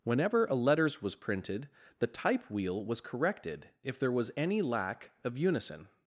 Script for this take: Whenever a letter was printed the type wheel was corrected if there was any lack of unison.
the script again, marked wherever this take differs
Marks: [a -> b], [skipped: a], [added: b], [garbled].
Whenever a [letter -> letters] was printed the type wheel was corrected if there was any lack of unison.